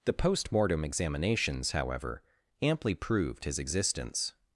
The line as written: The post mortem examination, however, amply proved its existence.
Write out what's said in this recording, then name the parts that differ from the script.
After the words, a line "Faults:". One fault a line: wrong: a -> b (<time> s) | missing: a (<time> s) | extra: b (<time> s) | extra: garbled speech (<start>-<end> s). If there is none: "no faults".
The post mortem examinations, however, amply proved his existence.
Faults:
wrong: examination -> examinations (0.8 s)
wrong: its -> his (3.4 s)